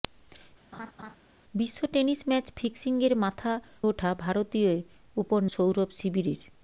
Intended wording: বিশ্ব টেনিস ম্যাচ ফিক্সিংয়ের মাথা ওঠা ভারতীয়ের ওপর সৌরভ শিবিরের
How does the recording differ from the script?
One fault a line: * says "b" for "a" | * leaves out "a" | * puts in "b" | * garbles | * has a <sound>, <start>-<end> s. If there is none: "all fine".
* has a laugh, 0.7-1.2 s